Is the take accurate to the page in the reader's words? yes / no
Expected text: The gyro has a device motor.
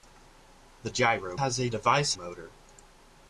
yes